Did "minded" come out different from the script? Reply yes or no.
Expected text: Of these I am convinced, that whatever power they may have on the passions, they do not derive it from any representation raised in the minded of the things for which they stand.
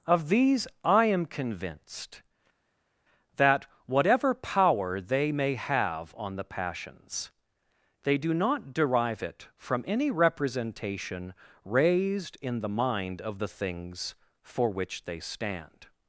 yes